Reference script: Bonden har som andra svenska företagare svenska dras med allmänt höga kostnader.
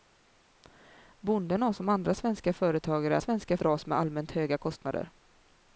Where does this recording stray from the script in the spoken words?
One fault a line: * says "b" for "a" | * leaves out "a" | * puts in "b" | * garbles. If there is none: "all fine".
all fine